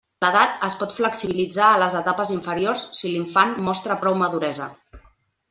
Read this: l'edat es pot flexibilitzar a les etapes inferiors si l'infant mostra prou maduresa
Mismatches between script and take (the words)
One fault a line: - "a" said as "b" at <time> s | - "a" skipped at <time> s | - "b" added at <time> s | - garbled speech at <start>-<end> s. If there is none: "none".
none